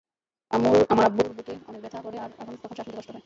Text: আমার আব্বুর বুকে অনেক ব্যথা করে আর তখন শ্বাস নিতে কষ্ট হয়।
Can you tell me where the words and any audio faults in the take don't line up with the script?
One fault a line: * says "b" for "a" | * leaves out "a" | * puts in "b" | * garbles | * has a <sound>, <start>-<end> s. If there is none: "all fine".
all fine